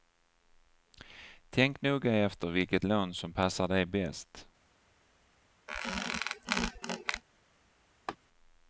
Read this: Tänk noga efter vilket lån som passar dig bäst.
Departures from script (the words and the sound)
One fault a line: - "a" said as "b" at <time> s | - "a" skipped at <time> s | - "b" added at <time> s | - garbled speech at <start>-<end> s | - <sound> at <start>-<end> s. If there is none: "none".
- squeak at 5.7-7.2 s
- laugh at 8.1-8.2 s